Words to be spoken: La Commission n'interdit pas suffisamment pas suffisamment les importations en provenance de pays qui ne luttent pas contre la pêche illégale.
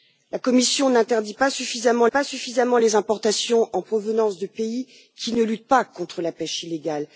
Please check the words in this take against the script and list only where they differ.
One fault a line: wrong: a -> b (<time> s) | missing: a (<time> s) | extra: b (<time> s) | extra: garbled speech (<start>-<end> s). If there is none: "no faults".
no faults